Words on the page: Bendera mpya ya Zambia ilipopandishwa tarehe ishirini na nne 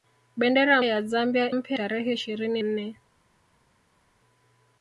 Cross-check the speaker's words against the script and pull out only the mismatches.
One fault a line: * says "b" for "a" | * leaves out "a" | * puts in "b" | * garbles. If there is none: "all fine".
* leaves out "mpya"
* says "mpya" for "ilipopandishwa"
* leaves out "na"